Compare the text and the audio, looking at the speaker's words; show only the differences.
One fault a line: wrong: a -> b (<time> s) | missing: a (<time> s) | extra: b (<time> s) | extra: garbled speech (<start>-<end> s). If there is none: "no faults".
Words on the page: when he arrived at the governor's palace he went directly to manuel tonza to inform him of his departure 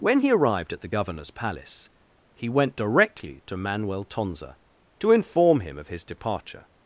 no faults